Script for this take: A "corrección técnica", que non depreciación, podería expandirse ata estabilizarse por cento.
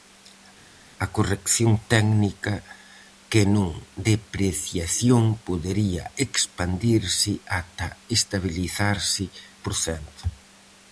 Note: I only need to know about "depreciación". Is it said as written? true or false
true